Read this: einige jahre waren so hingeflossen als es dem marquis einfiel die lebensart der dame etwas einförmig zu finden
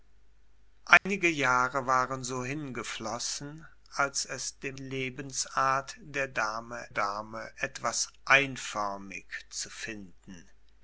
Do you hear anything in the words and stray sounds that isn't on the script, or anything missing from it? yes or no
yes